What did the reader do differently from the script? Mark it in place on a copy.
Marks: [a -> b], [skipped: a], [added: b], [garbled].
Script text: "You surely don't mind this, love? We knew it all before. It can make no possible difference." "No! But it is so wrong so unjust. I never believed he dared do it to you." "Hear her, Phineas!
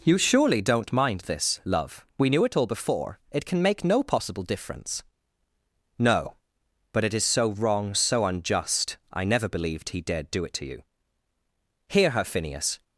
"You surely don't mind this, love? We knew it all before. It can make no possible difference." "No! But it is so wrong so unjust. I never believed he dared do it to you." "Hear her, Phineas!